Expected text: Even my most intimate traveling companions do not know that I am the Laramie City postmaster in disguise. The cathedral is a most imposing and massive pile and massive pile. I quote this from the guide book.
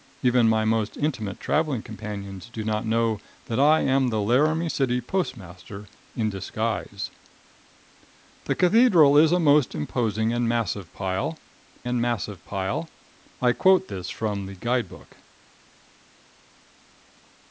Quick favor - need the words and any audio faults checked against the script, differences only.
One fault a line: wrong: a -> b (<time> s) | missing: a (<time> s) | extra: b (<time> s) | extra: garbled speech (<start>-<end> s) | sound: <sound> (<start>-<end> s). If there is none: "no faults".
no faults